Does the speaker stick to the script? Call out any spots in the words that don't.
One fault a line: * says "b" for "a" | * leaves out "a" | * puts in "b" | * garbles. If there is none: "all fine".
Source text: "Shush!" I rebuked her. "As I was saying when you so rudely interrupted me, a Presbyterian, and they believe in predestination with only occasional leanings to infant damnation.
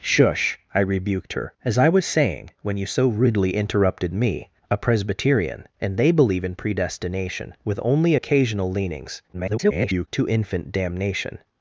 * garbles